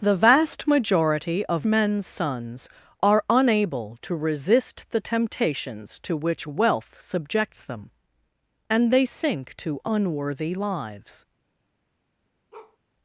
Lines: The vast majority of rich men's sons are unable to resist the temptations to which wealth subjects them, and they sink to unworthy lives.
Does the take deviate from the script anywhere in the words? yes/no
yes